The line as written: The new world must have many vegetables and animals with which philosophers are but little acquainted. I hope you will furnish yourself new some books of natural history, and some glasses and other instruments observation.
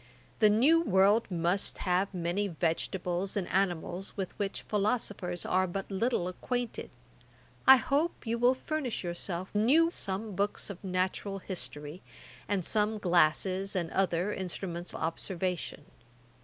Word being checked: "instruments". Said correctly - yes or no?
yes